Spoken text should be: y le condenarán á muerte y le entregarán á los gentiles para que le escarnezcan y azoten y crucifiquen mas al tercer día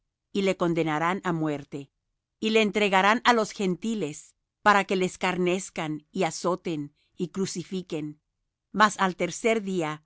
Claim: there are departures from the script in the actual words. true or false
false